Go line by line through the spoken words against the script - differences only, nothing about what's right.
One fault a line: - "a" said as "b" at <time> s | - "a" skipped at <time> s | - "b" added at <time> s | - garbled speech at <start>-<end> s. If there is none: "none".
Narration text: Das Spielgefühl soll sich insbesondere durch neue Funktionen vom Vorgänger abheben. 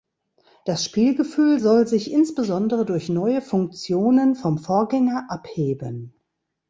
none